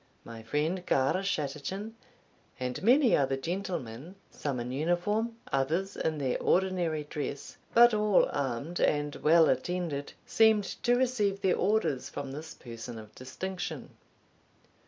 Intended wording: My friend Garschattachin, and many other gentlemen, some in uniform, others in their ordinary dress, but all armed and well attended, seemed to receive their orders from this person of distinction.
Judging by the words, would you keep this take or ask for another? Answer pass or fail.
pass